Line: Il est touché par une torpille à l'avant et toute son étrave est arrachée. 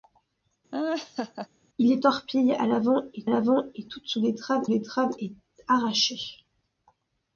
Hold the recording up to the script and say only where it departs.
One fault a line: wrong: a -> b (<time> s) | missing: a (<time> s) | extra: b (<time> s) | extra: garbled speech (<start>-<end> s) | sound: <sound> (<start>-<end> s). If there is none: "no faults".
sound: laugh (0.7-1.5 s)
missing: touché par une (2.0 s)
extra: l'avant et (3.3 s)
extra: étrave (4.7 s)